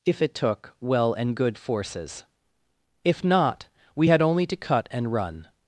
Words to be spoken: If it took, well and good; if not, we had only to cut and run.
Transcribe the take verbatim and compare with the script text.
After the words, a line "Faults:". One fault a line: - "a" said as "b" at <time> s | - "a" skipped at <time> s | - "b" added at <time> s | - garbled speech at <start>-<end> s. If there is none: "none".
If it took, well and good; forces if not, we had only to cut and run.
Faults:
- "forces" added at 1.6 s